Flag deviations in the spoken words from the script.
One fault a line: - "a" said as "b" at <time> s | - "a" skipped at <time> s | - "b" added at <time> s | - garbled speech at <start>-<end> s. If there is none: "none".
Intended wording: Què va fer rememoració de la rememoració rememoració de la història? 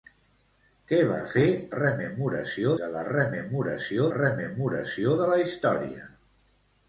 none